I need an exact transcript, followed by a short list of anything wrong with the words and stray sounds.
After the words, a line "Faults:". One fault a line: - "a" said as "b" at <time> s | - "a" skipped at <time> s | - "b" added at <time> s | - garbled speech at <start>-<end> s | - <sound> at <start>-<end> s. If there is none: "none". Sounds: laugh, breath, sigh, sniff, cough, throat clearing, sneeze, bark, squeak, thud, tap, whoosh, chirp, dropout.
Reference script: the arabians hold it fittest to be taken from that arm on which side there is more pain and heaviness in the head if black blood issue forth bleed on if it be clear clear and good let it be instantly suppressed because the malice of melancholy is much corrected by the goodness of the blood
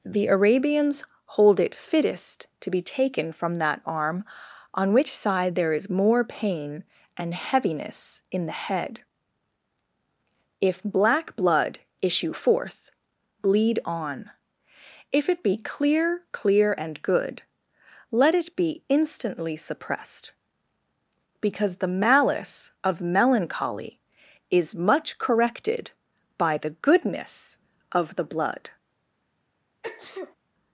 the arabians hold it fittest to be taken from that arm on which side there is more pain and heaviness in the head if black blood issue forth bleed on if it be clear clear and good let it be instantly suppressed because the malice of melancholy is much corrected by the goodness of the blood
Faults:
- sneeze at 29.8-30.4 s